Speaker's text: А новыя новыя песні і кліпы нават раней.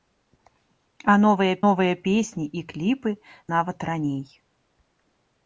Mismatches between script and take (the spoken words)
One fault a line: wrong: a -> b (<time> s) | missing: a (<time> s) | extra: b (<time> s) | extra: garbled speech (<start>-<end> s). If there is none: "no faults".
no faults